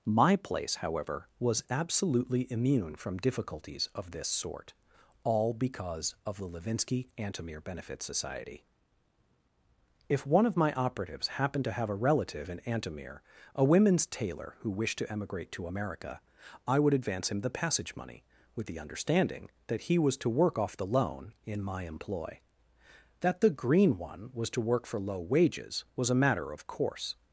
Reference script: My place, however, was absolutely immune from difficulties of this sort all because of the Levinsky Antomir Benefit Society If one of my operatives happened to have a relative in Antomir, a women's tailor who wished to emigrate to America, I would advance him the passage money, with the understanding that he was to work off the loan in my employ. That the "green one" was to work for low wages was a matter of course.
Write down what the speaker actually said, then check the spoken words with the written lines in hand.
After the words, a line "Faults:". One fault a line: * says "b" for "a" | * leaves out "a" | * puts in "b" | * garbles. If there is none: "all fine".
My place, however, was absolutely immune from difficulties of this sort all because of the Levinsky Antomir Benefit Society If one of my operatives happened to have a relative in Antomir, a women's tailor who wished to emigrate to America, I would advance him the passage money, with the understanding that he was to work off the loan in my employ. That the "green one" was to work for low wages was a matter of course.
Faults:
all fine